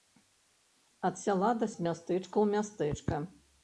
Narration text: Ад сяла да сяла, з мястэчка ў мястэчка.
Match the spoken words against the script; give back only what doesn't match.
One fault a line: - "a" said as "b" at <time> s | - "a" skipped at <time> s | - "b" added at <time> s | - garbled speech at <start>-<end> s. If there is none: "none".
- "сяла" skipped at 1.7 s